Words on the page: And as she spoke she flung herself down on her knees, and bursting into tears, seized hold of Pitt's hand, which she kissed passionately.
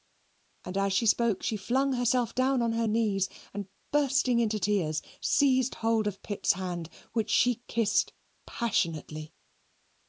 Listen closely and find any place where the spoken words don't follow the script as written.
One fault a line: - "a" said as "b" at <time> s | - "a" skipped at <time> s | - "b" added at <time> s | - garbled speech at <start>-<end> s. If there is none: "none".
none